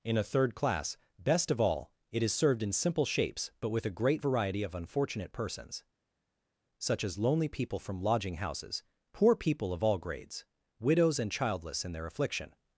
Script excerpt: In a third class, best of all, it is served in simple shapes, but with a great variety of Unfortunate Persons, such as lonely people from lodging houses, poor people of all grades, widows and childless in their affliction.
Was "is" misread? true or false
false